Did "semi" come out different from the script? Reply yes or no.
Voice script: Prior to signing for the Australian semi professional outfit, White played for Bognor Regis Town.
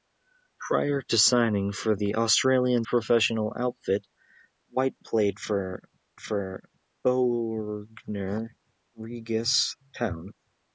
yes